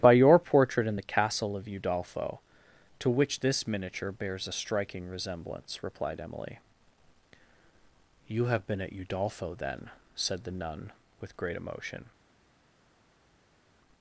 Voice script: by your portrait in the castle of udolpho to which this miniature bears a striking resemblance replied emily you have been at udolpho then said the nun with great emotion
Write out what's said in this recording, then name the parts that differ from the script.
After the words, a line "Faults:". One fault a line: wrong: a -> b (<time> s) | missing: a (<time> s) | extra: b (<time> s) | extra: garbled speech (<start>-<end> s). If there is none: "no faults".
by your portrait in the castle of udolpho to which this miniature bears a striking resemblance replied emily you have been at udolpho then said the nun with great emotion
Faults:
no faults